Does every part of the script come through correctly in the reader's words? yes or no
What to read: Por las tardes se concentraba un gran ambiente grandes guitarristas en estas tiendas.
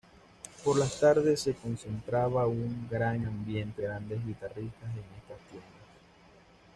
yes